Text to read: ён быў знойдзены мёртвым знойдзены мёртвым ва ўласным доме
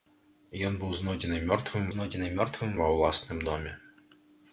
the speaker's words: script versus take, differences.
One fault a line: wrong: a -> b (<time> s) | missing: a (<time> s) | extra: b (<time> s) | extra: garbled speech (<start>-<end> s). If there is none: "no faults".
no faults